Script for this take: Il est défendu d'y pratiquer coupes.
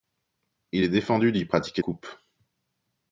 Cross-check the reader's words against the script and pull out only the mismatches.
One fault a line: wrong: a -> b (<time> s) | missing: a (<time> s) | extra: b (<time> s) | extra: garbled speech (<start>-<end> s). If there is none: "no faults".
no faults